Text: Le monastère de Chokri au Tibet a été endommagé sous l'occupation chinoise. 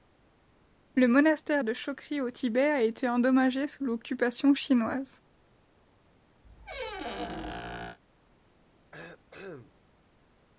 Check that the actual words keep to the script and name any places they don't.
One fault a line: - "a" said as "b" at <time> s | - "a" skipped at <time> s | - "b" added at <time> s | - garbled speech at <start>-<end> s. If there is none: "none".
none